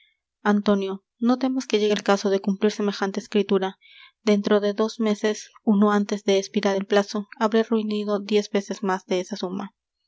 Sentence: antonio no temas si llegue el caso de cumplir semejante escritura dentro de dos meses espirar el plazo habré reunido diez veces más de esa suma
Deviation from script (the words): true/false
true